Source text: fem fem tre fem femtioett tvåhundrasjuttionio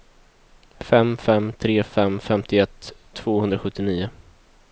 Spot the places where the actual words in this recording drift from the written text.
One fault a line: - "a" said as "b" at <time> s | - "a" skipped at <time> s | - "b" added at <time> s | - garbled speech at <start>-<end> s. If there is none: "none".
none